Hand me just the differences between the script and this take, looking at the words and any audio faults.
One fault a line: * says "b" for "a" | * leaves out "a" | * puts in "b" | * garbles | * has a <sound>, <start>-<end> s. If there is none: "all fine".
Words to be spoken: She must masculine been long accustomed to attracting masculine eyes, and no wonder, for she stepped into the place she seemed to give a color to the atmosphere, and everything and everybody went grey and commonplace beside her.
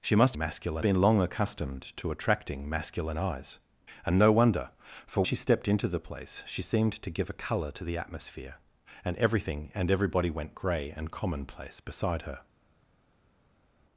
all fine